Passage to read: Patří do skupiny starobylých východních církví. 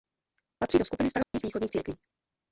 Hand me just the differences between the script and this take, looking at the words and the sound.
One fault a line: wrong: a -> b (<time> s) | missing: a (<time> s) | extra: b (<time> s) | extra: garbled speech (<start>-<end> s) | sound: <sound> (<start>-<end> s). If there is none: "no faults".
sound: dropout (1.2-1.3 s)